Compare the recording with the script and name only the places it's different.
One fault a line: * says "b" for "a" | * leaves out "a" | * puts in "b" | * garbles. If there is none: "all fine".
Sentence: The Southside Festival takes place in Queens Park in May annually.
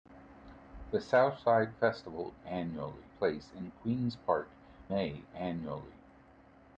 * says "annually" for "takes"
* leaves out "in"